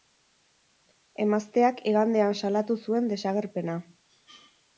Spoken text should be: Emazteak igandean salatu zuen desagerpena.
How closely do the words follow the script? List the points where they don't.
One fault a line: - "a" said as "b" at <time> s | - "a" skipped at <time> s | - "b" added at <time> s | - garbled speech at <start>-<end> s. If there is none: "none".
none